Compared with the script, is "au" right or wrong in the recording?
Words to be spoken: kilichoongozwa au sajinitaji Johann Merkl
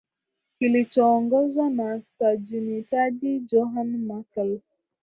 wrong